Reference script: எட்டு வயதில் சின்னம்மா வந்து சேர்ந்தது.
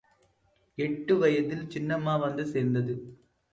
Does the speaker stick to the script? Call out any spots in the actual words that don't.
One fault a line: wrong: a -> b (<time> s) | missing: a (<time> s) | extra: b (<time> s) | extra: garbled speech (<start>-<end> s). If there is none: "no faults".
no faults